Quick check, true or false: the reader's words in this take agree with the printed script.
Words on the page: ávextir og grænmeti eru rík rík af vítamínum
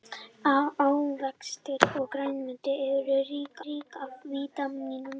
true